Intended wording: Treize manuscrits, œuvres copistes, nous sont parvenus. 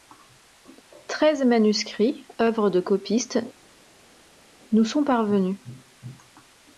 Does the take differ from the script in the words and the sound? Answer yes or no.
yes